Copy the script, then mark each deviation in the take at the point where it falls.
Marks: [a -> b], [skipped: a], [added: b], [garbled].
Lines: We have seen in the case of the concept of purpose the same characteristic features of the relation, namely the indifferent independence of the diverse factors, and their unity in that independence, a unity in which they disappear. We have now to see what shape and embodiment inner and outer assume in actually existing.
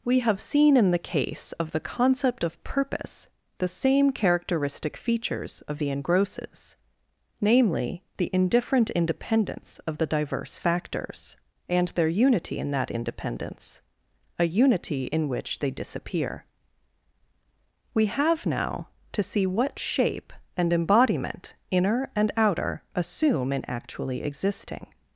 We have seen in the case of the concept of purpose the same characteristic features of the [relation, -> engrosses] namely the indifferent independence of the diverse factors, and their unity in that independence, a unity in which they disappear. We have now to see what shape and embodiment inner and outer assume in actually existing.